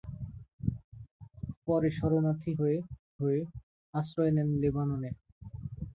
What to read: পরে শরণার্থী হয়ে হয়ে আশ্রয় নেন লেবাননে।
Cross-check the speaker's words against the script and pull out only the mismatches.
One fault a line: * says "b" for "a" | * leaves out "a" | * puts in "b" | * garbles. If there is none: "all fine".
all fine